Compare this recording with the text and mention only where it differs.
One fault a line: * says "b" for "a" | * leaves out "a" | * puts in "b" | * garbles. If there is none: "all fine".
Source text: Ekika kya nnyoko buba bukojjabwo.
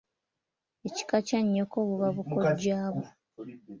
all fine